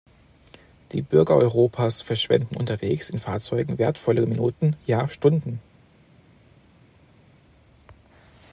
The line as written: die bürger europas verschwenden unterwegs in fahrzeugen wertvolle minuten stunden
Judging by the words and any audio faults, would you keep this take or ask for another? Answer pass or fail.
fail